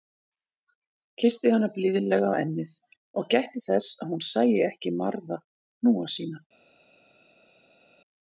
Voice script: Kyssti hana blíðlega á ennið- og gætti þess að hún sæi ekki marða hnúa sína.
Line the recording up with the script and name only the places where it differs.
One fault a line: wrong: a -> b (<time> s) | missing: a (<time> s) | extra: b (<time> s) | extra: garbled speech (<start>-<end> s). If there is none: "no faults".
no faults